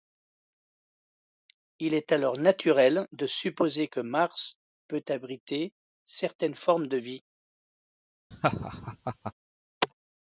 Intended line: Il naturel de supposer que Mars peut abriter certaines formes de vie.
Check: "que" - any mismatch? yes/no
no